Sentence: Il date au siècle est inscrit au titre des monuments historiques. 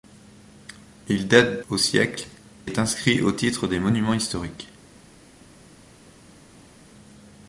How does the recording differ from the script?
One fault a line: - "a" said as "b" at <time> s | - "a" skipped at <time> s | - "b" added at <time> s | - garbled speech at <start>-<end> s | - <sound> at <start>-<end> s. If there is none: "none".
none